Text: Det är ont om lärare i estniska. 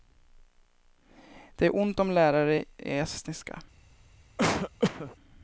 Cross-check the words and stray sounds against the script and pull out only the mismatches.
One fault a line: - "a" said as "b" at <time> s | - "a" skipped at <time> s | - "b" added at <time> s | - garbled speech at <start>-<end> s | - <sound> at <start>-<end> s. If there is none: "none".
- cough at 4.4-5.2 s